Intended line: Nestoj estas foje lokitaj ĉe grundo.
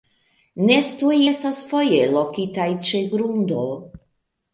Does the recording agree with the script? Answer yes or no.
yes